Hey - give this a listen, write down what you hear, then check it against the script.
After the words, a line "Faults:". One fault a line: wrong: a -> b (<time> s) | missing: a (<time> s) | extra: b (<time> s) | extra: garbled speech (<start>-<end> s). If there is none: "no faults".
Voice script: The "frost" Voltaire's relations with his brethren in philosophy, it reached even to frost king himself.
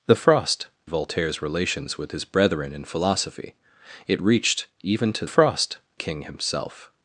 The "frost" Voltaire's relations with his brethren in philosophy, it reached even to frost king himself.
Faults:
no faults